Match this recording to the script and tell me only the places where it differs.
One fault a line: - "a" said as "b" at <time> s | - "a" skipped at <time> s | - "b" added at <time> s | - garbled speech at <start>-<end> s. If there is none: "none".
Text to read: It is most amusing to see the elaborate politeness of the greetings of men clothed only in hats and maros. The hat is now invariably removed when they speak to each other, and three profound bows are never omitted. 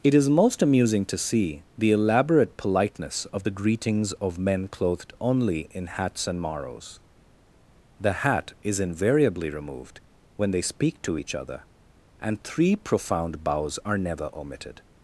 - "now" skipped at 8.8 s